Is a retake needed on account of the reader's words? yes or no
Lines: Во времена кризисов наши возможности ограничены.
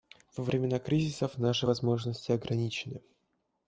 no